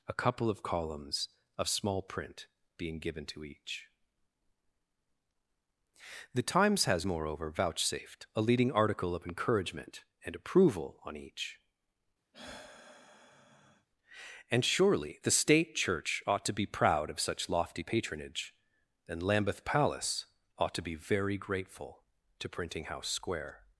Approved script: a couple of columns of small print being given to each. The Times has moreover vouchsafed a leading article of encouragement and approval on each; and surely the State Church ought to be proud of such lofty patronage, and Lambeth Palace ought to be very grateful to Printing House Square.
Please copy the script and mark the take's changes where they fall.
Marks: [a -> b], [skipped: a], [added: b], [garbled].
a couple of columns of small print being given to each. The Times has moreover vouchsafed a leading article of encouragement and approval on each; and surely the State Church ought to be proud of such lofty patronage, and Lambeth Palace ought to be very grateful to Printing House Square.